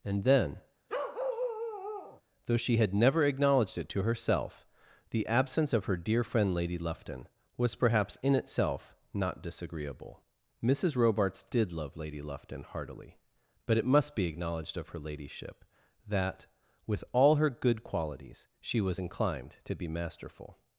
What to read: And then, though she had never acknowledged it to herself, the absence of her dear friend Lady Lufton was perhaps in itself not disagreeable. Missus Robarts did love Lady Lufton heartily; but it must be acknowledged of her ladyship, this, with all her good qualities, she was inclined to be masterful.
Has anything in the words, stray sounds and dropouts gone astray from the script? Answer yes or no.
yes